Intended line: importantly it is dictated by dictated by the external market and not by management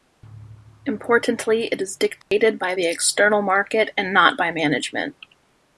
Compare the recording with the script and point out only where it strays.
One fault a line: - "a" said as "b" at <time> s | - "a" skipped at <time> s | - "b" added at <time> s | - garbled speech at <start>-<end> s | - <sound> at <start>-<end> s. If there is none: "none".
- dropout at 2.2-2.3 s
- "dictated by" skipped at 2.7 s